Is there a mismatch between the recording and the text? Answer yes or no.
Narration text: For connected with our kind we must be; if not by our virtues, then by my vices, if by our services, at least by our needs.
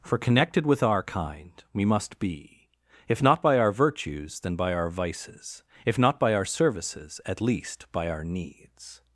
yes